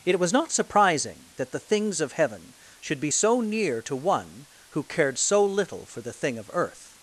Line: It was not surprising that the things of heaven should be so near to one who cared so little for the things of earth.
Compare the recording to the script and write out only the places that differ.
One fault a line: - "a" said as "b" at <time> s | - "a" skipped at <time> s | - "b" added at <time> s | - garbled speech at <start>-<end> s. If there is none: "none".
- "things" said as "thing" at 6.1 s